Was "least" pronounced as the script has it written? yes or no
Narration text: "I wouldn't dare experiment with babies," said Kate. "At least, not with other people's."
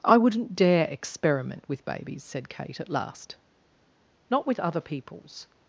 no